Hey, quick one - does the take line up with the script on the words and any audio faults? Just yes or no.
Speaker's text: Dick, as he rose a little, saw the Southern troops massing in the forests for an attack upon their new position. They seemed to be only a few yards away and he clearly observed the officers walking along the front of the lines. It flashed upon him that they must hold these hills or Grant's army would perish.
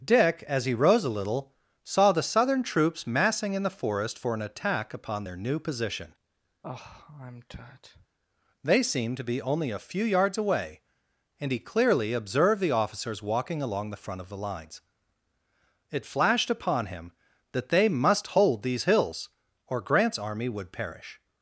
no